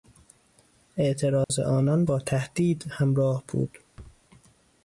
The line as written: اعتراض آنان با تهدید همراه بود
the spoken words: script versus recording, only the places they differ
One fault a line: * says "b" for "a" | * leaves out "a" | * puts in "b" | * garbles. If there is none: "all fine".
all fine